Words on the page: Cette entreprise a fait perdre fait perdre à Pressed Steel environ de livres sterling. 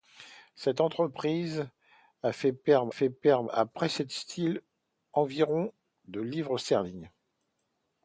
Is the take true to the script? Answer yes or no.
yes